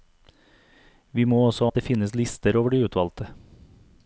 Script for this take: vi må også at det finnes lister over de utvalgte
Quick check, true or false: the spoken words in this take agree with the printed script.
true